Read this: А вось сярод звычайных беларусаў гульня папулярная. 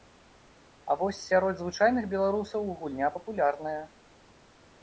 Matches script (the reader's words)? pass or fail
pass